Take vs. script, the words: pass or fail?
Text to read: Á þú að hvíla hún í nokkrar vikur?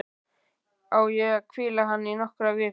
fail